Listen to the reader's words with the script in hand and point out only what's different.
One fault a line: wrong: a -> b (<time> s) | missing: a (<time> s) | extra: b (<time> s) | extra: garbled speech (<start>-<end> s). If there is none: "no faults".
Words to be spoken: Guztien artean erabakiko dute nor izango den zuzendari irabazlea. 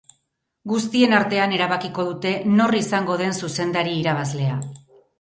no faults